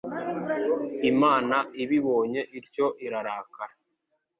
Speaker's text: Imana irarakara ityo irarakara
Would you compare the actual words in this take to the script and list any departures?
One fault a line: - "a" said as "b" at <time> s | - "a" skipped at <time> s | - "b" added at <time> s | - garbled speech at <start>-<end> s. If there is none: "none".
- "irarakara" said as "ibibonye" at 1.8 s